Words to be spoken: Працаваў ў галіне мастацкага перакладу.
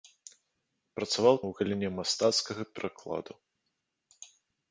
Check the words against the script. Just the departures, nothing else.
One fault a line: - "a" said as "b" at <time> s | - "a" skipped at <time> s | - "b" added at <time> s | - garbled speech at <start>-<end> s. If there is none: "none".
none